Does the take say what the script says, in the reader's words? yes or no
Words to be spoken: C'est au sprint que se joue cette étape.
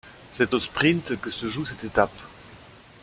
yes